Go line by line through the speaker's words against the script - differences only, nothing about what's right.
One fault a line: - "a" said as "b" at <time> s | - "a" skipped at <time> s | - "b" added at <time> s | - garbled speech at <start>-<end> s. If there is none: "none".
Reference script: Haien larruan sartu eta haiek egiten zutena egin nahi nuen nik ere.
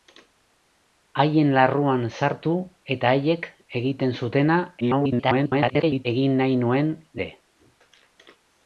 - garbled speech at 4.8-6.1 s
- "nik" skipped at 6.9 s